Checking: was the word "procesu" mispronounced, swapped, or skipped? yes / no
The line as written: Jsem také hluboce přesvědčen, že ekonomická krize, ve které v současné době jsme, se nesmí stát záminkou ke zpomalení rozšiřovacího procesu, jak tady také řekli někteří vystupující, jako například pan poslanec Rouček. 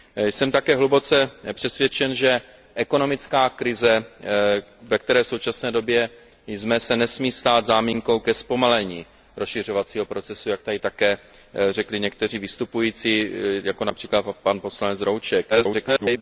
no